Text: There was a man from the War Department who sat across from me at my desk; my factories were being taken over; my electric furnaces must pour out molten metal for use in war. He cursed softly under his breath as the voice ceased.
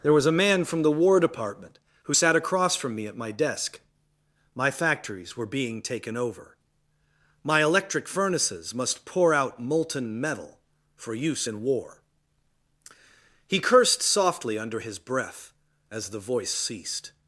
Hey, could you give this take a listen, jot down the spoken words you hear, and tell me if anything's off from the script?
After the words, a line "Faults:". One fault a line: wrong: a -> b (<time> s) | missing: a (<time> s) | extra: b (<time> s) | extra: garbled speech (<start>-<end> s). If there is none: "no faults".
There was a man from the War Department who sat across from me at my desk; my factories were being taken over; my electric furnaces must pour out molten metal for use in war. He cursed softly under his breath as the voice ceased.
Faults:
no faults